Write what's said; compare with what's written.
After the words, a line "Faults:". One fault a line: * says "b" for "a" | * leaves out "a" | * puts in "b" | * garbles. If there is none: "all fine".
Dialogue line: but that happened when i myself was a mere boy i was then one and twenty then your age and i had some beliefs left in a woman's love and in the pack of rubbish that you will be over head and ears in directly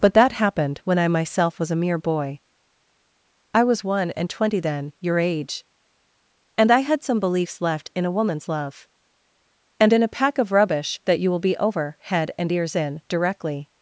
but that happened when i myself was a mere boy i was one and twenty then your age and i had some beliefs left in a woman's love and in a pack of rubbish that you will be over head and ears in directly
Faults:
* leaves out "then"
* says "a" for "the"